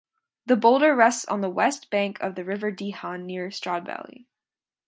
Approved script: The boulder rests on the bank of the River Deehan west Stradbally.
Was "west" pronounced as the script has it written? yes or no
no